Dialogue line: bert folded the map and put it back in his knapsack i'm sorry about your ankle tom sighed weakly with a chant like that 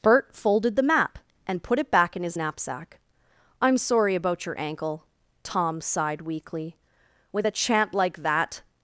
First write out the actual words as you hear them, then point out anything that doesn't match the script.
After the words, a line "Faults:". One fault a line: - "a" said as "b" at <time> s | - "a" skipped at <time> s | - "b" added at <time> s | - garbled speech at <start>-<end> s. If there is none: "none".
bert folded the map and put it back in his knapsack i'm sorry about your ankle tom sighed weakly with a chant like that
Faults:
none